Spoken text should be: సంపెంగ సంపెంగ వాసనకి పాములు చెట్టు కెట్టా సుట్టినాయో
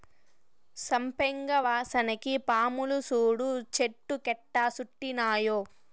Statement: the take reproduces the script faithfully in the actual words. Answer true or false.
false